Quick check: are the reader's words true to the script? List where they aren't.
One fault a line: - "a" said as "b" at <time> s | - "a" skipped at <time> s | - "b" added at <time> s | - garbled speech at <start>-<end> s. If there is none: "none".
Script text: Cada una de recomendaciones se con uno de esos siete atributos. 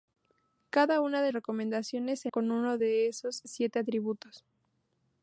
none